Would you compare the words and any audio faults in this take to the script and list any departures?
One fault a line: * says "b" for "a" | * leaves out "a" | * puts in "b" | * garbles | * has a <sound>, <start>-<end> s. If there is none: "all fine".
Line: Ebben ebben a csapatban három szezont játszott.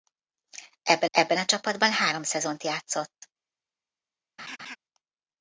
* has a laugh, 4.4-4.8 s